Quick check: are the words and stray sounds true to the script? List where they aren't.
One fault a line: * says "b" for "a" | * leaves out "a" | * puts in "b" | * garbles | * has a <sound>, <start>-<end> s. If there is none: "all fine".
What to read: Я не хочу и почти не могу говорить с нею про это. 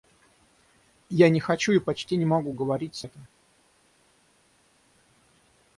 * leaves out "нею про"